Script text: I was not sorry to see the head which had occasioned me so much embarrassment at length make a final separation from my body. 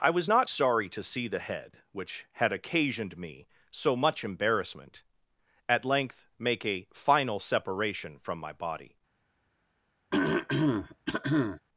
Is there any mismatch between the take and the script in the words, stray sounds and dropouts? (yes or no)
yes